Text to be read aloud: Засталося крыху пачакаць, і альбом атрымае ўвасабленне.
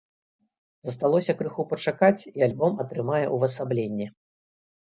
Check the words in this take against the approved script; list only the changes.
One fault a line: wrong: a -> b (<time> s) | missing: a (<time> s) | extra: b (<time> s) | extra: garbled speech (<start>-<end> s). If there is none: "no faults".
no faults